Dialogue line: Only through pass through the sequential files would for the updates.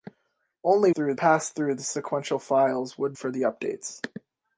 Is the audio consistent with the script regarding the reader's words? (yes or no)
yes